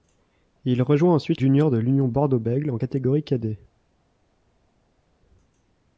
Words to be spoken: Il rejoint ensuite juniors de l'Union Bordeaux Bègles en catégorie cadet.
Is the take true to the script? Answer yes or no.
yes